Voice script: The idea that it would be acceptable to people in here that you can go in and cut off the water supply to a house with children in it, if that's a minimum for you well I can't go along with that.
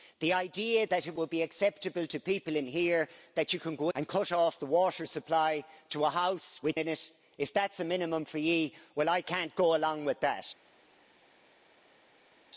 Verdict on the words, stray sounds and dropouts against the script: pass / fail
fail